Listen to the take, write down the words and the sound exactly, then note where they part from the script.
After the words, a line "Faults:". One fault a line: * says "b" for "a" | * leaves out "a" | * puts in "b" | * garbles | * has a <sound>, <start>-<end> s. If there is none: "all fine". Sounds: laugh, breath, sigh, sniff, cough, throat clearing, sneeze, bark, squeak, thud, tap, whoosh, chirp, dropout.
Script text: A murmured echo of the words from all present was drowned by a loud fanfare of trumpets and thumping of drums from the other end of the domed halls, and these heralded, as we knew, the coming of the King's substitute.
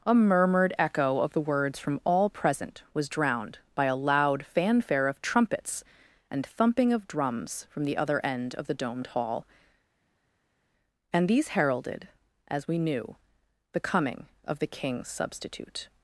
A murmured echo of the words from all present was drowned by a loud fanfare of trumpets and thumping of drums from the other end of the domed hall, and these heralded, as we knew, the coming of the King's substitute.
Faults:
* says "hall" for "halls"